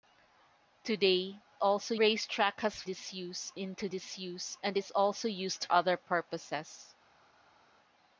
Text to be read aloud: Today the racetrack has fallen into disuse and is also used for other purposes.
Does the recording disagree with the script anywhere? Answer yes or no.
yes